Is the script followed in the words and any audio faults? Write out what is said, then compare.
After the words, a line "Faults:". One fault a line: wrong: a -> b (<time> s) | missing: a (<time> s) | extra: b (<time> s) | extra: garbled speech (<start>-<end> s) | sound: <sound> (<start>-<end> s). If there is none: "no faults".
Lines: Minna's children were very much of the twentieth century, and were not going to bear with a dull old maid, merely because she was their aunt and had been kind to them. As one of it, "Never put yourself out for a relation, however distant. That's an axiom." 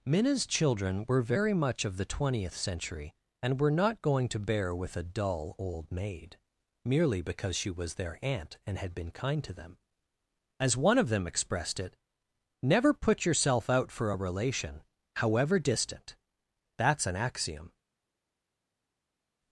Minna's children were very much of the twentieth century, and were not going to bear with a dull old maid, merely because she was their aunt and had been kind to them. As one of them expressed it, "Never put yourself out for a relation, however distant. That's an axiom."
Faults:
extra: them expressed (11.1 s)